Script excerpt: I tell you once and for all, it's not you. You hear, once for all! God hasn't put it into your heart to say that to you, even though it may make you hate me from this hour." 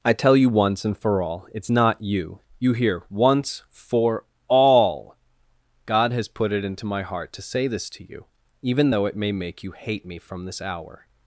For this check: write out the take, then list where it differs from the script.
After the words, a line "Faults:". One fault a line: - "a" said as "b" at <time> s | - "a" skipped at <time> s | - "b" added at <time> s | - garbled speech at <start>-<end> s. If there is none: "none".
I tell you once and for all, it's not you. You hear, once for all! God has put it into my heart to say this to you, even though it may make you hate me from this hour."
Faults:
- "hasn't" said as "has" at 6.1 s
- "your" said as "my" at 6.9 s
- "that" said as "this" at 7.7 s